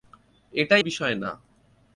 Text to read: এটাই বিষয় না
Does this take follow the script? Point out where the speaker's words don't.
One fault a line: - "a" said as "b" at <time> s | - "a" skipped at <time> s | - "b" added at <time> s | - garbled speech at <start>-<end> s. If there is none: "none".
none